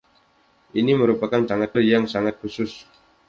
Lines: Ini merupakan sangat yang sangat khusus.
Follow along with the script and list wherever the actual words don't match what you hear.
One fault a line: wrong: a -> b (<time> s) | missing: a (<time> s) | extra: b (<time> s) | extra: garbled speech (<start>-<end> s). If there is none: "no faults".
no faults